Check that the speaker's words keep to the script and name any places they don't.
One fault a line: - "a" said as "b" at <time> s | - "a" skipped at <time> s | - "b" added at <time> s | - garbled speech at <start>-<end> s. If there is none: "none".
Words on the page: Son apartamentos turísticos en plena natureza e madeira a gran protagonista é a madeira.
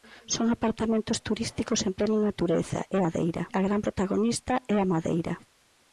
none